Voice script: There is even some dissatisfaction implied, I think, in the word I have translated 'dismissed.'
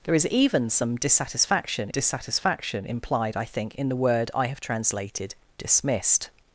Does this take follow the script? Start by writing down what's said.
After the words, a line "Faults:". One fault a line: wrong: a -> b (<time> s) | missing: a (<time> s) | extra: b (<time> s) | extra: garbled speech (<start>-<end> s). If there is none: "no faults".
There is even some dissatisfaction dissatisfaction implied, I think, in the word I have translated 'dismissed.'
Faults:
extra: dissatisfaction (1.9 s)